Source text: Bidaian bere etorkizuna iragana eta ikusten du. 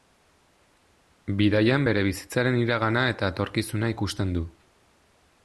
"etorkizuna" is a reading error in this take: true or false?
true